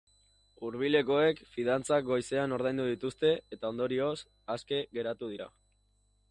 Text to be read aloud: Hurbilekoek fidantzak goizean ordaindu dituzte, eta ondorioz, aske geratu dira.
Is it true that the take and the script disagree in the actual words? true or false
false